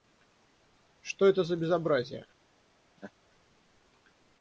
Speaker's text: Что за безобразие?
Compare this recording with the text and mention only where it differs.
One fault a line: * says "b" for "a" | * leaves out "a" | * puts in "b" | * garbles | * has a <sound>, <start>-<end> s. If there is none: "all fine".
* puts in "это"
* has a laugh, 3.0-3.1 s